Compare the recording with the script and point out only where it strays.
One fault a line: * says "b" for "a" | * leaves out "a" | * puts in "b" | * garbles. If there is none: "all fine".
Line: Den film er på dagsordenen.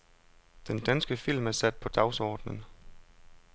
* puts in "danske"
* puts in "sat"